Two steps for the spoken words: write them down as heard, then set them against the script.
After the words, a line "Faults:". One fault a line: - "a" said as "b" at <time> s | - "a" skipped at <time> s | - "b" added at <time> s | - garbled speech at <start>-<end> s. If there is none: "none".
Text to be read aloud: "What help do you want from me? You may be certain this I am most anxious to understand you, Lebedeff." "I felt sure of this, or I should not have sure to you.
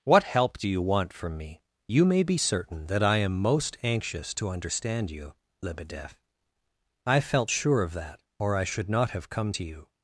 "What help do you want from me? You may be certain that I am most anxious to understand you, Lebedeff." "I felt sure of that, or I should not have come to you.
Faults:
- "this" said as "that" at 2.9 s
- "this" said as "that" at 7.9 s
- "sure" said as "come" at 9.3 s